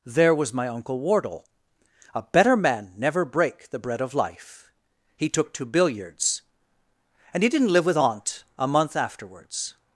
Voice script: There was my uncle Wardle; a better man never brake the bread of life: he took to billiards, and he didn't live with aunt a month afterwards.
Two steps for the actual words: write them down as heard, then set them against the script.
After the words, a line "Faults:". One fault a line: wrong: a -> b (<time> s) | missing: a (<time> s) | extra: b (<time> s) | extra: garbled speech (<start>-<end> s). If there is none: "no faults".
There was my uncle Wardle; a better man never brake the bread of life: he took to billiards, and he didn't live with aunt a month afterwards.
Faults:
no faults